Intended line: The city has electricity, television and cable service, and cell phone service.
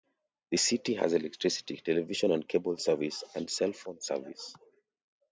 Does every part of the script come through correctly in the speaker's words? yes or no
yes